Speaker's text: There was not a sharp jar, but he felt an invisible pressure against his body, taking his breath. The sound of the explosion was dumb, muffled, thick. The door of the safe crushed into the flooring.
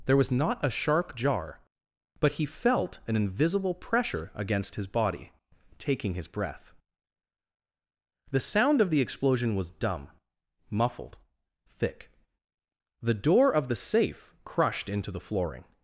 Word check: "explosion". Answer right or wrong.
right